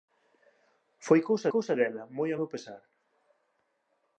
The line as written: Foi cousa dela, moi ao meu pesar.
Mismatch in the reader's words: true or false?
true